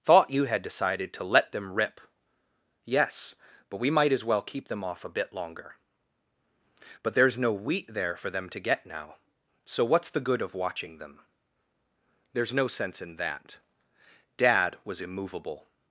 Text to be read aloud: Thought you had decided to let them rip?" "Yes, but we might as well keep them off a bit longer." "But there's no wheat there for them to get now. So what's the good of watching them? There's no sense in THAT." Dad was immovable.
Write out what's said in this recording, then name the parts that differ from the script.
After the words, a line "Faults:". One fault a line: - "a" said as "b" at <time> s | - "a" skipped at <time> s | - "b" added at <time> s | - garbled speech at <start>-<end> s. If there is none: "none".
Thought you had decided to let them rip?" "Yes, but we might as well keep them off a bit longer." "But there's no wheat there for them to get now. So what's the good of watching them? There's no sense in THAT." Dad was immovable.
Faults:
none